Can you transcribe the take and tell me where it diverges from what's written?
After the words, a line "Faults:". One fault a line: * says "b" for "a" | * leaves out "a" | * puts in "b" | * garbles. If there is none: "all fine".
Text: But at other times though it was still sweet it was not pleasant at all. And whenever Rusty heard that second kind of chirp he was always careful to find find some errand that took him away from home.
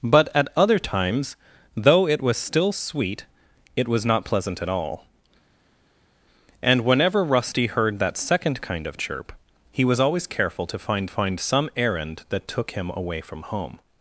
But at other times though it was still sweet it was not pleasant at all. And whenever Rusty heard that second kind of chirp he was always careful to find find some errand that took him away from home.
Faults:
all fine